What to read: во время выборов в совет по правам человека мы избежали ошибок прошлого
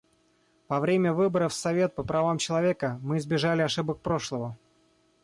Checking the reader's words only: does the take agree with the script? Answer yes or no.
yes